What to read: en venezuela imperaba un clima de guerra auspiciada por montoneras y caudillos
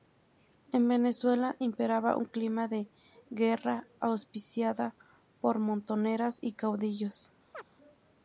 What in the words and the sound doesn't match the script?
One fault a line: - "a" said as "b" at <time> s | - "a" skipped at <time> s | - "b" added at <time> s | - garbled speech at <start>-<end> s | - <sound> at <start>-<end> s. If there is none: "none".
- chirp at 7.5-7.7 s